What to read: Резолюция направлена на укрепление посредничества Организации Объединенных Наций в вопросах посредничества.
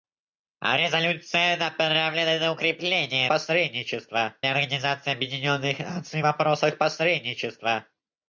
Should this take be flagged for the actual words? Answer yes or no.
no